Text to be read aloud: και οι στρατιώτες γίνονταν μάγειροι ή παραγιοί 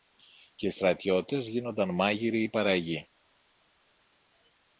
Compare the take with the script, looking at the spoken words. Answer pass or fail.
pass